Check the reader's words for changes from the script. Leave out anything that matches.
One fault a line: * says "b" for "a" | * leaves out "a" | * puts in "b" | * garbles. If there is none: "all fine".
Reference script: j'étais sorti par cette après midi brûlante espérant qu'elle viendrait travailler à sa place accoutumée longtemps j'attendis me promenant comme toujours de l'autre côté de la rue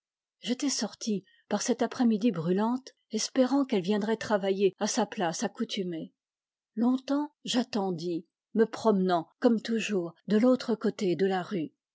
all fine